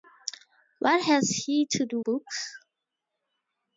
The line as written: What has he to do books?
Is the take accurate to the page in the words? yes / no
yes